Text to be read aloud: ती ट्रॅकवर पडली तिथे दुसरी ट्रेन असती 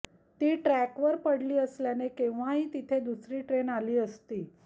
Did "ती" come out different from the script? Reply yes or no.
no